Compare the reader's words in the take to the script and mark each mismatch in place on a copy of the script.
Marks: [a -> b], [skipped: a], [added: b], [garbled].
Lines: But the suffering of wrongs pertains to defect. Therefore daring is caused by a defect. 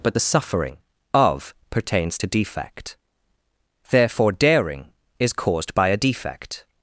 But the suffering of [skipped: wrongs] pertains to defect. Therefore daring is caused by a defect.